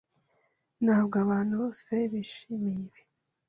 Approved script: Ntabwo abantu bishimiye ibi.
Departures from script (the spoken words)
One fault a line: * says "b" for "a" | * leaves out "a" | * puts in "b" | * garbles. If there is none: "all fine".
* puts in "bose"